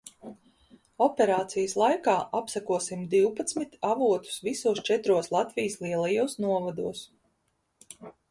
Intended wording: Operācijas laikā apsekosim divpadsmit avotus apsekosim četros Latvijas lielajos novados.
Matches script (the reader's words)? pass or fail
fail